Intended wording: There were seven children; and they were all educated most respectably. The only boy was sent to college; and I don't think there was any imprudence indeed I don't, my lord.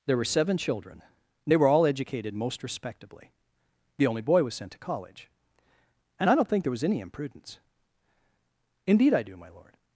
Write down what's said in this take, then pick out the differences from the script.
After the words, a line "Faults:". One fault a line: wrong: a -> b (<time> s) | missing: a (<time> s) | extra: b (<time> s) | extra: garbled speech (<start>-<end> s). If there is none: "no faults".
There were seven children; and they were all educated most respectably. The only boy was sent to college; and I don't think there was any imprudence indeed I do, my lord.
Faults:
wrong: don't -> do (9.2 s)